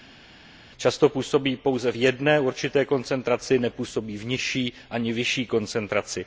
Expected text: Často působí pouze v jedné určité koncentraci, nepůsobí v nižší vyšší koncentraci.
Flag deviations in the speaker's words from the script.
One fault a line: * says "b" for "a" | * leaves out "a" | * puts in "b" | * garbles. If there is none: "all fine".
* puts in "ani"